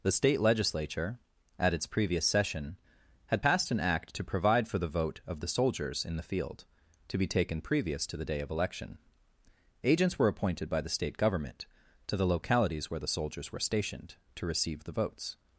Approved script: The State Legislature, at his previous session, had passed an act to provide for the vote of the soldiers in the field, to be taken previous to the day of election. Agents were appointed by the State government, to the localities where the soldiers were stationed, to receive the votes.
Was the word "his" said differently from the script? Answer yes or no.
yes